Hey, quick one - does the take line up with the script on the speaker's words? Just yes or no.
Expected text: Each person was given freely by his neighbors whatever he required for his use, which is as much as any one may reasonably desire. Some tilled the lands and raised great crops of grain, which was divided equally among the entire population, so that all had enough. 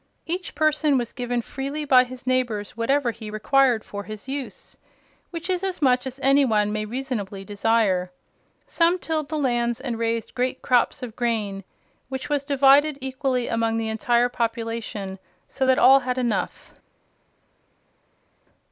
yes